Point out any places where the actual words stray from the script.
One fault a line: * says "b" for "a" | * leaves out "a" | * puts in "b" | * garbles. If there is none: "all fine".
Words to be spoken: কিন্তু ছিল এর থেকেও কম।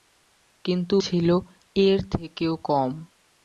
all fine